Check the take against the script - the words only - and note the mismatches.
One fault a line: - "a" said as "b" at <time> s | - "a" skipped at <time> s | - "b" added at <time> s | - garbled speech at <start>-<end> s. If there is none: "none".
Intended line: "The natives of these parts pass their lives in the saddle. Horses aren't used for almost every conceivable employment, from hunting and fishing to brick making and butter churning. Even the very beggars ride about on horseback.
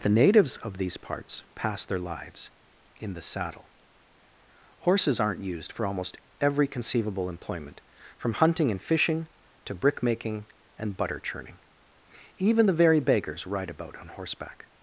none